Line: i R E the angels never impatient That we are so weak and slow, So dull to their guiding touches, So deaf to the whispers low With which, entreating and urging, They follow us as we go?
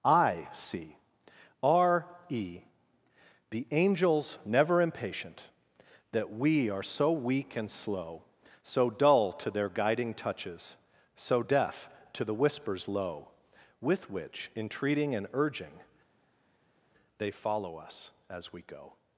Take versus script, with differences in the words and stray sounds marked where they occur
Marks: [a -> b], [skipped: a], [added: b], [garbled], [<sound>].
i [added: see] R E the angels never impatient That we are so weak and slow, So dull to their guiding touches, So deaf to the whispers low With which, entreating and urging, They follow us as we go?